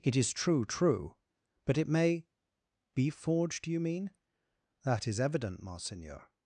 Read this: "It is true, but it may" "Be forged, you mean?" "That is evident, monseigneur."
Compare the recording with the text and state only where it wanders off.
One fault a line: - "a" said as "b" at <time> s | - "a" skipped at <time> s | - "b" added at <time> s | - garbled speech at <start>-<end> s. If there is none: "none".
- "true" added at 0.7 s